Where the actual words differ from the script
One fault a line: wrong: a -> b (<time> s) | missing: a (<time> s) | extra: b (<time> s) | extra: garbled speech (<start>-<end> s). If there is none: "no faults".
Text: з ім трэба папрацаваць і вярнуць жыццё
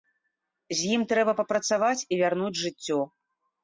no faults